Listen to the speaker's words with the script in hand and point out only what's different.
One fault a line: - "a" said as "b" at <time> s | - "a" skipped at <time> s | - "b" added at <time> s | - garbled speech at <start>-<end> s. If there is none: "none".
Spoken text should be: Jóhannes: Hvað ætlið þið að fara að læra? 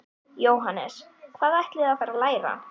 none